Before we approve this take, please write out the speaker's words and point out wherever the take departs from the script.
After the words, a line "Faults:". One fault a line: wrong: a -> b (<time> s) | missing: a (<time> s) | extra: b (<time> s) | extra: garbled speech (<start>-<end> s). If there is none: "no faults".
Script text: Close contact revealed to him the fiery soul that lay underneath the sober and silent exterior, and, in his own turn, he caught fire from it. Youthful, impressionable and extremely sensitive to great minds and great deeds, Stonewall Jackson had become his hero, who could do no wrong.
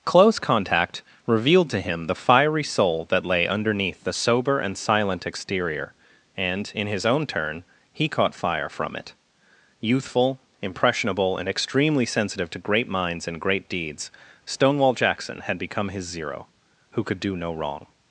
Close contact revealed to him the fiery soul that lay underneath the sober and silent exterior, and, in his own turn, he caught fire from it. Youthful, impressionable and extremely sensitive to great minds and great deeds, Stonewall Jackson had become his zero, who could do no wrong.
Faults:
wrong: hero -> zero (16.1 s)